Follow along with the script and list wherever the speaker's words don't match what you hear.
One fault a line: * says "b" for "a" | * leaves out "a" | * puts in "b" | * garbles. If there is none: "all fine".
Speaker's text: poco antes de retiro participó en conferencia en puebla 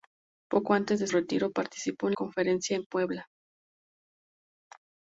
all fine